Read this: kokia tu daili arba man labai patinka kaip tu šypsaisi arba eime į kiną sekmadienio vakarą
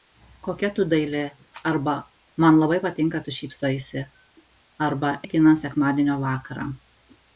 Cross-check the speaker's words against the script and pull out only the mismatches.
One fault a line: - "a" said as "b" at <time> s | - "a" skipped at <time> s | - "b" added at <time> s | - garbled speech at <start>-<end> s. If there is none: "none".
- "kaip" skipped at 3.2 s
- "eime" skipped at 5.2 s